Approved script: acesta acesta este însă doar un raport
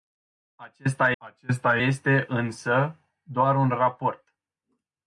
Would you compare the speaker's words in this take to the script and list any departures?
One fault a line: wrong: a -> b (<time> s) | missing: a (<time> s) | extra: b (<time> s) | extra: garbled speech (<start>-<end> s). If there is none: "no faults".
no faults